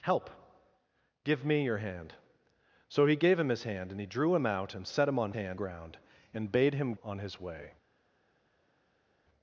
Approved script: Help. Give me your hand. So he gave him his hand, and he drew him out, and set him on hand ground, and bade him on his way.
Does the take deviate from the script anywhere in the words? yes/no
no